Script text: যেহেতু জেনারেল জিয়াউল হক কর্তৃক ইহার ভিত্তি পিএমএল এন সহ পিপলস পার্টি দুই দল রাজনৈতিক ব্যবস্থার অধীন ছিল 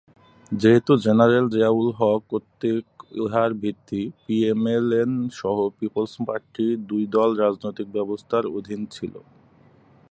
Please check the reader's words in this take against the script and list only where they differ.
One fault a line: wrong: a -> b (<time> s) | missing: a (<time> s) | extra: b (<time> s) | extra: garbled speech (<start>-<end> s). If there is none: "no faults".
no faults